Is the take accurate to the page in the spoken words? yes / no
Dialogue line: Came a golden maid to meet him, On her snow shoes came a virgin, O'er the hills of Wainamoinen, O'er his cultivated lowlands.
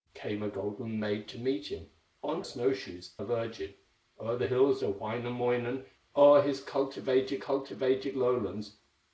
no